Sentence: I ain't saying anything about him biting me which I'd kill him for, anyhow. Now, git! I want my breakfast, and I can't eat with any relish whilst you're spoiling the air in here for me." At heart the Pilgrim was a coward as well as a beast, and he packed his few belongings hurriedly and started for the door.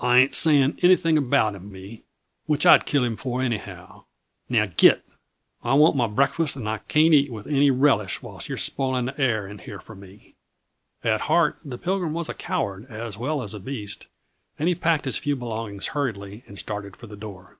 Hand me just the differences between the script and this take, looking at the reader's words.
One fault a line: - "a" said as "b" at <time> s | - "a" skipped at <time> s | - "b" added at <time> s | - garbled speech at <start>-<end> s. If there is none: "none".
- "biting" skipped at 1.7 s